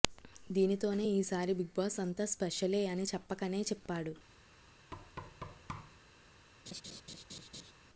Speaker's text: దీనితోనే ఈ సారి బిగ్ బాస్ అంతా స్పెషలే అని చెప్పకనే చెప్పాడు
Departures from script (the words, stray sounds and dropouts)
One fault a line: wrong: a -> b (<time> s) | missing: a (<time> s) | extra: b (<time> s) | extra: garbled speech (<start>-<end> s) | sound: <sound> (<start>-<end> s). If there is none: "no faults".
sound: thud (4.9-6.0 s)
sound: laugh (6.7-7.7 s)